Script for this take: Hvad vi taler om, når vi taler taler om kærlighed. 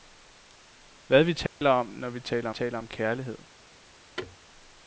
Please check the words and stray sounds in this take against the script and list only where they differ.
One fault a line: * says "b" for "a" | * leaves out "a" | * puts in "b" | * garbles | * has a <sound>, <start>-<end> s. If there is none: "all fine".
* has a dropout, 1.5-1.6 s
* has a thud, 4.2-4.4 s